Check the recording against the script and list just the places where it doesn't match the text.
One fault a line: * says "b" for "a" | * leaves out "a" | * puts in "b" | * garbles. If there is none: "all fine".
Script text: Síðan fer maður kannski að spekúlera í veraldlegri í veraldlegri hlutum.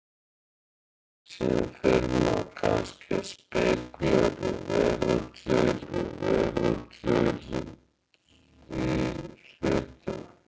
all fine